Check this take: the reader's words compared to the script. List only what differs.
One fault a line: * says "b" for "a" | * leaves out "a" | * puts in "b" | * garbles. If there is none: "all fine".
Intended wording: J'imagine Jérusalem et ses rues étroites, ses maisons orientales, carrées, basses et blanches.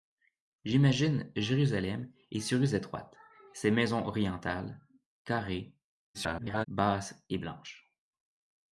* garbles